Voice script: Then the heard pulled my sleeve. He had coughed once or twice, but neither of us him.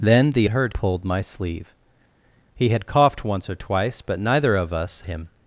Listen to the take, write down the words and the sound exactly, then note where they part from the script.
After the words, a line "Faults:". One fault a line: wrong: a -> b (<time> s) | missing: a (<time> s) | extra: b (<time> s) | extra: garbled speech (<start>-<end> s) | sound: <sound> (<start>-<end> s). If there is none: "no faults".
Then the heard pulled my sleeve. He had coughed once or twice, but neither of us him.
Faults:
no faults